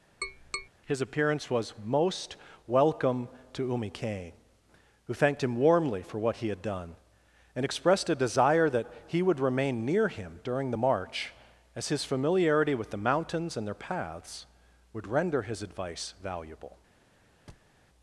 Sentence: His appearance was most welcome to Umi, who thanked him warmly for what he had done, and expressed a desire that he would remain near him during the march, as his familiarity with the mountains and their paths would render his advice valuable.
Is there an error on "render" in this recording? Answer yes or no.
no